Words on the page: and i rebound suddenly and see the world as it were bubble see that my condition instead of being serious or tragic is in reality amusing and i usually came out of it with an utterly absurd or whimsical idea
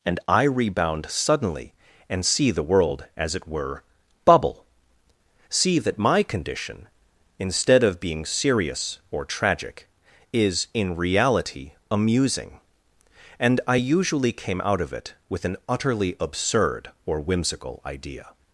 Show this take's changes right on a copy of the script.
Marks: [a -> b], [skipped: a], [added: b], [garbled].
and i rebound suddenly and see the world as it were bubble see that my condition instead of being serious or tragic is in reality amusing and i usually came out of it with an utterly absurd or whimsical idea